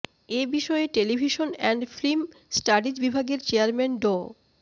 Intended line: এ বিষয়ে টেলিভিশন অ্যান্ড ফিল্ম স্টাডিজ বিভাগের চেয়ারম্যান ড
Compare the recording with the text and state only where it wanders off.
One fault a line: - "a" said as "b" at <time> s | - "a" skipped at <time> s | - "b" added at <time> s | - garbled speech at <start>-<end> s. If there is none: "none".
none